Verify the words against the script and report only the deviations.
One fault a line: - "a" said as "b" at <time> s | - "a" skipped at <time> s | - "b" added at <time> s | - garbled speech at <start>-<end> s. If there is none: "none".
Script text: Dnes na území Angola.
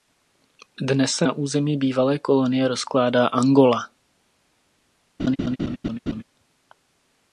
- "se" added at 1.1 s
- "bývalé kolonie rozkládá" added at 1.8 s